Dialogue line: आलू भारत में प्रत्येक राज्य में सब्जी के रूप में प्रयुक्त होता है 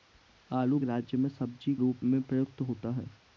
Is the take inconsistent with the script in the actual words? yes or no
yes